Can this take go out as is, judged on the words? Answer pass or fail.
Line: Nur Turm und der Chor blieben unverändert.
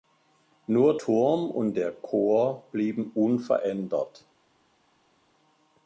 pass